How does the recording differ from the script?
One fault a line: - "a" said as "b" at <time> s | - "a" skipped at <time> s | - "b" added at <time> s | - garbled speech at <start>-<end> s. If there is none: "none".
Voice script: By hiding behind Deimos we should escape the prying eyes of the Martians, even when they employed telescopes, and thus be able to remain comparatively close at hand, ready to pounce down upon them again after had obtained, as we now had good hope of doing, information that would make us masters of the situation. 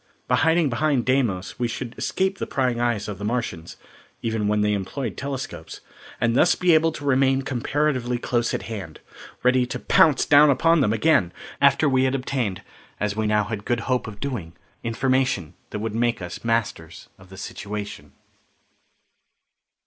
- "we" added at 11.9 s